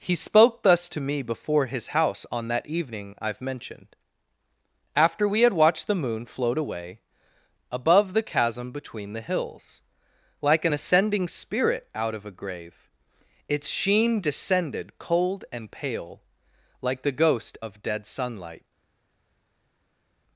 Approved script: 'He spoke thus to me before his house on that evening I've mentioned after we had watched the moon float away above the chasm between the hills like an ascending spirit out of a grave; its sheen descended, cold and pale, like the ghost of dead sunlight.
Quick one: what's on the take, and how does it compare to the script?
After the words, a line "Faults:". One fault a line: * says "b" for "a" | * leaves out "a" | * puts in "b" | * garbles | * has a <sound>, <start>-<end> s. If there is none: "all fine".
'He spoke thus to me before his house on that evening I've mentioned after we had watched the moon float away above the chasm between the hills like an ascending spirit out of a grave; its sheen descended, cold and pale, like the ghost of dead sunlight.
Faults:
all fine